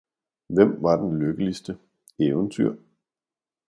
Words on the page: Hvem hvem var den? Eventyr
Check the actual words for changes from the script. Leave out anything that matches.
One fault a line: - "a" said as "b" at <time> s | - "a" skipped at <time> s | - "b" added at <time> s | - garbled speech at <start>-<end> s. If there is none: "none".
- "hvem" skipped at 0.8 s
- "lykkeligste" added at 1.2 s